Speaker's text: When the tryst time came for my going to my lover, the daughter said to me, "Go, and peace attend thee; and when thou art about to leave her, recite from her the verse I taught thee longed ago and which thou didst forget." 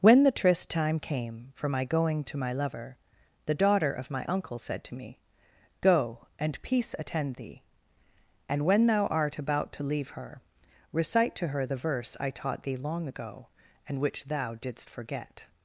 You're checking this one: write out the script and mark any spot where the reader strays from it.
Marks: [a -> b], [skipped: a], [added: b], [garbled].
When the tryst time came for my going to my lover, the daughter [added: of my uncle] said to me, "Go, and peace attend thee; and when thou art about to leave her, recite [from -> to] her the verse I taught thee [longed -> long] ago and which thou didst forget."